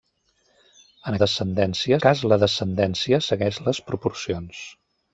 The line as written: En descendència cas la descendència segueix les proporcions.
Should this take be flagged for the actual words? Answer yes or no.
no